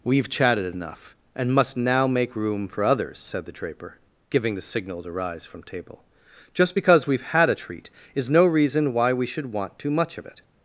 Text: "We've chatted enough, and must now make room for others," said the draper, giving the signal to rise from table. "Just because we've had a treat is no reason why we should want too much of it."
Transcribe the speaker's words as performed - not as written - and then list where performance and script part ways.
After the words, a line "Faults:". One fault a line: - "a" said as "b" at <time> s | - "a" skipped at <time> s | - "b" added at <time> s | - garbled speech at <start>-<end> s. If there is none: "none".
"We've chatted enough, and must now make room for others," said the draper, giving the signal to rise from table. "Just because we've had a treat is no reason why we should want too much of it."
Faults:
none